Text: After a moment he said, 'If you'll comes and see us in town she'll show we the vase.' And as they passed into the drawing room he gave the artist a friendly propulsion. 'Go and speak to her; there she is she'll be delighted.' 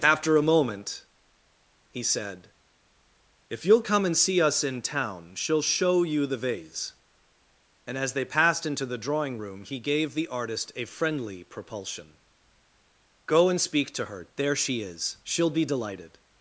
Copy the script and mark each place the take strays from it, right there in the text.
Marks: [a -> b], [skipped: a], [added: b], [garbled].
After a moment he said, 'If you'll [comes -> come] and see us in town she'll show [we -> you] the vase.' And as they passed into the drawing room he gave the artist a friendly propulsion. 'Go and speak to her; there she is she'll be delighted.'